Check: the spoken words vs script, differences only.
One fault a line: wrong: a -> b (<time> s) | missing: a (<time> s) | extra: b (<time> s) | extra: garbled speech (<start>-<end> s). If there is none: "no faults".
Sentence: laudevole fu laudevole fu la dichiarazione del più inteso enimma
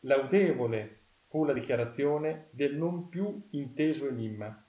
missing: laudevole fu (1.4 s)
extra: non (2.8 s)